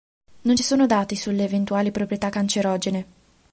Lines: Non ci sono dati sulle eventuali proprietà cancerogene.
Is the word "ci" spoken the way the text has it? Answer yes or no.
yes